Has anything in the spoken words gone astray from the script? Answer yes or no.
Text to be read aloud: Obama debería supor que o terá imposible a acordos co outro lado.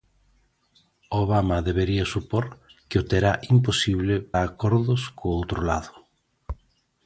no